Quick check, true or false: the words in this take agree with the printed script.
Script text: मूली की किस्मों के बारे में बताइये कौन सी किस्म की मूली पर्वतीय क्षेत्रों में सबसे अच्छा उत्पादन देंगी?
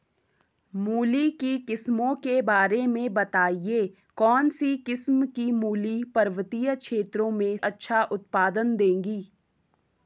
false